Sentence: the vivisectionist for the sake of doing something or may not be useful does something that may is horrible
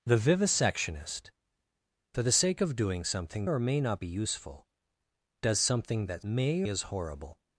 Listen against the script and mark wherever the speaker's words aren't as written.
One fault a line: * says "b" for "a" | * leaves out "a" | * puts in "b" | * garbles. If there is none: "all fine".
all fine